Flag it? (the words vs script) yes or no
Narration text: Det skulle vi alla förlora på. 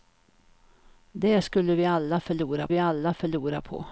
yes